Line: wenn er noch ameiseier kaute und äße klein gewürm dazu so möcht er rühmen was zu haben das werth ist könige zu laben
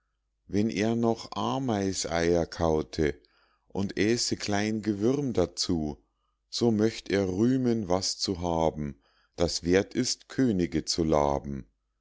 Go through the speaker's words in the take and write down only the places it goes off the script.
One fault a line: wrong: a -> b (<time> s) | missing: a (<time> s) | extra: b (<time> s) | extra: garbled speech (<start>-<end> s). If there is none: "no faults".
no faults